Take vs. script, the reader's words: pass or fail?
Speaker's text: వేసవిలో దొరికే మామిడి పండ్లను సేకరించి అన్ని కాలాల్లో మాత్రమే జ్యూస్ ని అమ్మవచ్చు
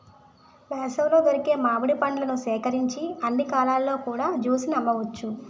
fail